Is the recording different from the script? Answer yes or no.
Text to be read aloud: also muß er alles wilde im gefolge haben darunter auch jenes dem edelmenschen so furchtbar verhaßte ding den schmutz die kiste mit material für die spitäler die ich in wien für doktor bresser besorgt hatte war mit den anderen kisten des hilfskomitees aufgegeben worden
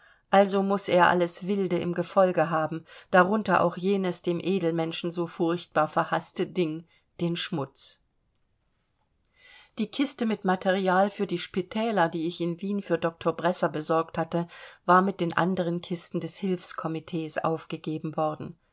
no